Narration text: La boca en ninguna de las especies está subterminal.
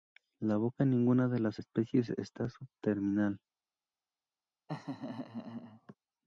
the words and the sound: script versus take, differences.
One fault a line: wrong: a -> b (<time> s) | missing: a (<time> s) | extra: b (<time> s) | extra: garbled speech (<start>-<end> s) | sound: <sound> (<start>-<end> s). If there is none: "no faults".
sound: laugh (4.7-5.9 s)